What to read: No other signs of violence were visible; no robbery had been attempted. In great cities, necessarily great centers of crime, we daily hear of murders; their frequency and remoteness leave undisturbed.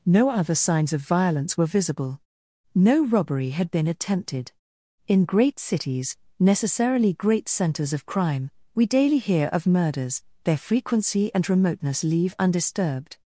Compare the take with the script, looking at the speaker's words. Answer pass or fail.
pass